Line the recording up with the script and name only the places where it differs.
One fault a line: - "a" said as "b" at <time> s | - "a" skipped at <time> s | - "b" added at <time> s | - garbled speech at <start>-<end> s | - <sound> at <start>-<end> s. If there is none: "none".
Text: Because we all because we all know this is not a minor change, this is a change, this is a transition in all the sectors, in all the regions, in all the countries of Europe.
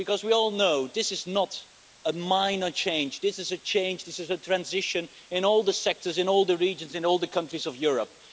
- "because we all" skipped at 0.5 s